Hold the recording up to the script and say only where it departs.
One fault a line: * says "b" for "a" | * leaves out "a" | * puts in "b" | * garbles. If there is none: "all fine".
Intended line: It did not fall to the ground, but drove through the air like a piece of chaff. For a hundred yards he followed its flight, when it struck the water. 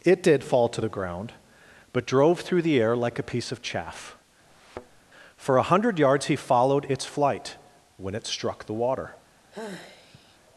* leaves out "not"